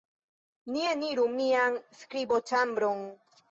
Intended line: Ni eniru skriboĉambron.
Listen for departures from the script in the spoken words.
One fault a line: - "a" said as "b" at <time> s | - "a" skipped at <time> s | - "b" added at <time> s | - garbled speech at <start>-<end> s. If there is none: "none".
- "mian" added at 1.4 s